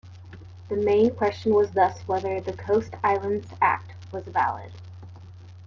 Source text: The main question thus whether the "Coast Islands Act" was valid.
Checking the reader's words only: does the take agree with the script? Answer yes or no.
no